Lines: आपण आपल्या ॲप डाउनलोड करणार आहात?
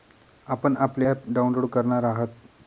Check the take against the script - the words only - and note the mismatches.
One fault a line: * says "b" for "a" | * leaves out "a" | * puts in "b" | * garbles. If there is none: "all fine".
all fine